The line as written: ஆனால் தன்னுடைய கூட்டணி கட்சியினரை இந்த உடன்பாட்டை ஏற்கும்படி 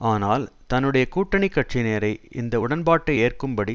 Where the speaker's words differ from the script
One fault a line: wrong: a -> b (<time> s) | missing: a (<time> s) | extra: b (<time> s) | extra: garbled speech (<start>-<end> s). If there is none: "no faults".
no faults